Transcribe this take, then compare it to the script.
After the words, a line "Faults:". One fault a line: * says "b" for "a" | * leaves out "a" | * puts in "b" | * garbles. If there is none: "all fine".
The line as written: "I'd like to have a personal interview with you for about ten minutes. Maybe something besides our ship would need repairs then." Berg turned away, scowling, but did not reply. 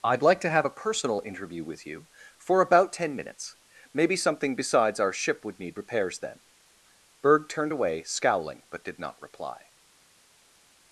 "I'd like to have a personal interview with you for about ten minutes. Maybe something besides our ship would need repairs then." Berg turned away, scowling, but did not reply.
Faults:
all fine